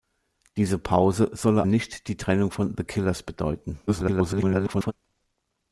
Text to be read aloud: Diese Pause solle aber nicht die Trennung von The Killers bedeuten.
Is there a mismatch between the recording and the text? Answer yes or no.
yes